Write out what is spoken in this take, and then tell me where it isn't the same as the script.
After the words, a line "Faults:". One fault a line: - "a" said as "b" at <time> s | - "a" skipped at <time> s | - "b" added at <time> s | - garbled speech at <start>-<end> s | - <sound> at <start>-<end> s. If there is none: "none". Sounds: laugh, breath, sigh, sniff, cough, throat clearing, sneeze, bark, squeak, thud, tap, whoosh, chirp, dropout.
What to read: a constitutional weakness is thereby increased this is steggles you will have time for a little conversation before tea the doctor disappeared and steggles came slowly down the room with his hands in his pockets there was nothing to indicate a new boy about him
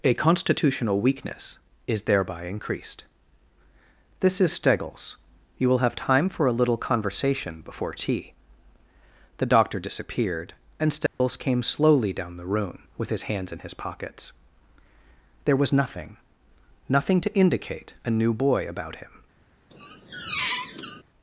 a constitutional weakness is thereby increased this is steggles you will have time for a little conversation before tea the doctor disappeared and steggles came slowly down the room with his hands in his pockets there was nothing nothing to indicate a new boy about him
Faults:
- dropout at 11.1-11.2 s
- "nothing" added at 16.9 s
- squeak at 19.7-21.0 s